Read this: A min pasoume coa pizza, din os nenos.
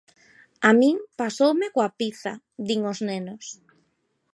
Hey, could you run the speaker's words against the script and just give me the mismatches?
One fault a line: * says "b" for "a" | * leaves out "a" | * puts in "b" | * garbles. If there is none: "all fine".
all fine